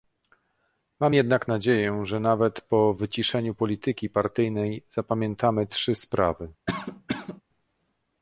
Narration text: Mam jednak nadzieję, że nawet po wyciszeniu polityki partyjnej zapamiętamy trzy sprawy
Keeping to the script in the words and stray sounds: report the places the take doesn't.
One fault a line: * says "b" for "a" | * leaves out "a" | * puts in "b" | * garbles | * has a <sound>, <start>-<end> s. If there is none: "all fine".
* has a cough, 6.7-7.4 s